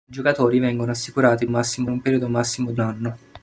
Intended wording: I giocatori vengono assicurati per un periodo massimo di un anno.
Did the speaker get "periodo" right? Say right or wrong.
right